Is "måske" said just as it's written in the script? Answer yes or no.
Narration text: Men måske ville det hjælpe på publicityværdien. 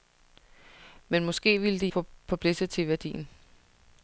yes